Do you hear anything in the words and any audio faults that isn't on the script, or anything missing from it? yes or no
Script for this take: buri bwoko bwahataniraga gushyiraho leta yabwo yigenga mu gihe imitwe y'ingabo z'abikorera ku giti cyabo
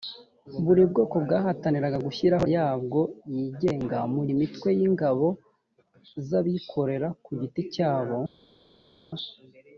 yes